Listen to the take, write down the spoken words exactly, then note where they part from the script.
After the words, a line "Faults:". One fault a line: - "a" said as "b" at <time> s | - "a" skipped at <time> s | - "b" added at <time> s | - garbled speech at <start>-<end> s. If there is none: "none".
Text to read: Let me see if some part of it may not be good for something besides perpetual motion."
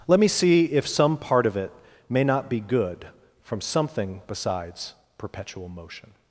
Let me see if some part of it may not be good from something besides perpetual motion."
Faults:
- "for" said as "from" at 3.4 s